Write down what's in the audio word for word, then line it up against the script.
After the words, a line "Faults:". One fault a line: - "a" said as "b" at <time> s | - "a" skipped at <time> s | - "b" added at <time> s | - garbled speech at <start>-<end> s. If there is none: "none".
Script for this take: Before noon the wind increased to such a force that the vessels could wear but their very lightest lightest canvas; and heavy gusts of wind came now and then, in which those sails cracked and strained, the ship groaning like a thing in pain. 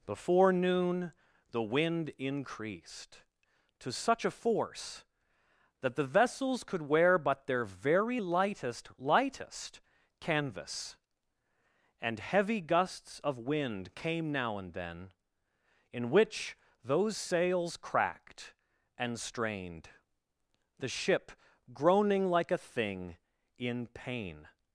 Before noon the wind increased to such a force that the vessels could wear but their very lightest lightest canvas; and heavy gusts of wind came now and then, in which those sails cracked and strained, the ship groaning like a thing in pain.
Faults:
none